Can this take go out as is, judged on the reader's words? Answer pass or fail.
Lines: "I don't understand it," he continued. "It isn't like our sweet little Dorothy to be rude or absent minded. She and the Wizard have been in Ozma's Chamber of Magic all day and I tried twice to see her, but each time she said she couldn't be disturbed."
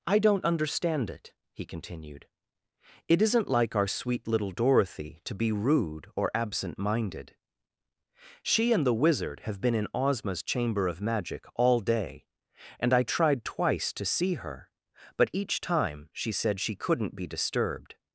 pass